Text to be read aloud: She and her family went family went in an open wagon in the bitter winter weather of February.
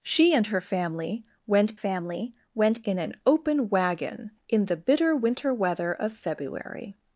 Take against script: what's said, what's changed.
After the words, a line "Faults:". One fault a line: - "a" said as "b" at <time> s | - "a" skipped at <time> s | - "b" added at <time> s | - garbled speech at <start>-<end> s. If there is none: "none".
She and her family went family went in an open wagon in the bitter winter weather of February.
Faults:
none